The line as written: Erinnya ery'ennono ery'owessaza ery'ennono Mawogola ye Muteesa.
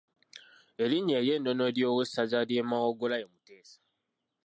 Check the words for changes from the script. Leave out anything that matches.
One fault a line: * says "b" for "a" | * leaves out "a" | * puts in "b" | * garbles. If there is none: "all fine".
* says "ly'e" for "ery'ennono"